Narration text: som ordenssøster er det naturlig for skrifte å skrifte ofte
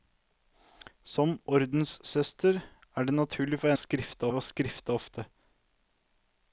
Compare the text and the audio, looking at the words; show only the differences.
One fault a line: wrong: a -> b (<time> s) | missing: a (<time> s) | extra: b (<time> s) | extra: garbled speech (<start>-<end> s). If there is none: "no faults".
no faults